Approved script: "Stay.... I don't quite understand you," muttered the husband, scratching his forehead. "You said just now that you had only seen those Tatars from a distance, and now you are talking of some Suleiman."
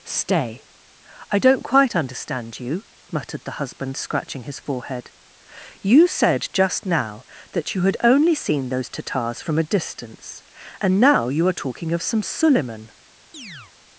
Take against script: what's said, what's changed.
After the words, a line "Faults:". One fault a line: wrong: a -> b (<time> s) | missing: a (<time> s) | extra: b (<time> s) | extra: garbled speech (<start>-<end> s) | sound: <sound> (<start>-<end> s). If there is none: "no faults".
"Stay.... I don't quite understand you," muttered the husband, scratching his forehead. "You said just now that you had only seen those Tatars from a distance, and now you are talking of some Suleiman."
Faults:
sound: chirp (13.3-13.7 s)